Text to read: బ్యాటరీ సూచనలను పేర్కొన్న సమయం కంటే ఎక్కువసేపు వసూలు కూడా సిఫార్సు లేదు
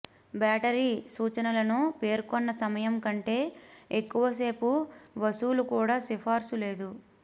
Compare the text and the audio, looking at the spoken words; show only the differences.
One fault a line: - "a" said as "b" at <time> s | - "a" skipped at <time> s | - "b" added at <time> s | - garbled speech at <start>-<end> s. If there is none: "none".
none